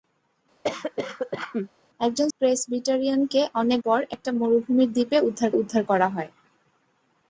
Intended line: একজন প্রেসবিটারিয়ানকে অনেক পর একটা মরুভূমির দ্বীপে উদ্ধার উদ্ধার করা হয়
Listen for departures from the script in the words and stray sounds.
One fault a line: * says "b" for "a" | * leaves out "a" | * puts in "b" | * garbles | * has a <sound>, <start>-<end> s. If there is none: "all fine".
* has a cough, 0.6-1.7 s